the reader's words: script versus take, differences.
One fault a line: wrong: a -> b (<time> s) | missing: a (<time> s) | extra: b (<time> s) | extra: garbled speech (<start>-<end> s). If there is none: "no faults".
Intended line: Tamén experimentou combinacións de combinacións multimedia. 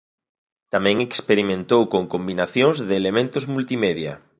extra: con (1.9 s)
wrong: combinacións -> elementos (3.0 s)